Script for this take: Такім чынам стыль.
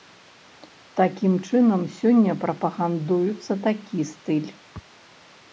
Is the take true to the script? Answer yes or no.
no